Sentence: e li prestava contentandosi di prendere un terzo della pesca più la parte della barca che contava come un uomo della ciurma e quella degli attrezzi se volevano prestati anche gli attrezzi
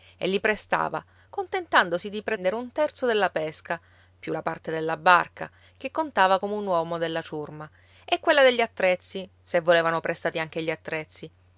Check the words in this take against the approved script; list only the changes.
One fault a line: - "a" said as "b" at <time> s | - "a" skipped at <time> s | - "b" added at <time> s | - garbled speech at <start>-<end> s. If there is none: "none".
none